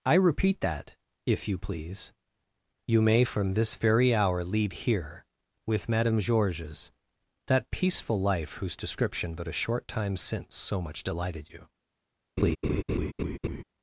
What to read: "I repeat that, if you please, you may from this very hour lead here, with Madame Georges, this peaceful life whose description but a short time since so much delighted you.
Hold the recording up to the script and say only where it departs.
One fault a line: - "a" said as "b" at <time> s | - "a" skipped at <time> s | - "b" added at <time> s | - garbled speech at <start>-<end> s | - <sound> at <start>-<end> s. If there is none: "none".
- "this" said as "that" at 7.5 s
- laugh at 12.4-13.6 s